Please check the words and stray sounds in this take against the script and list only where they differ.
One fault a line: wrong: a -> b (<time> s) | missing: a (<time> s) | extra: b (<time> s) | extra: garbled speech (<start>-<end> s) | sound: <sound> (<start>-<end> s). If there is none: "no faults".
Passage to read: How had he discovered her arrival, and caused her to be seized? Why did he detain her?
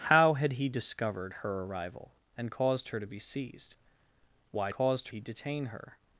wrong: did -> caused (4.7 s)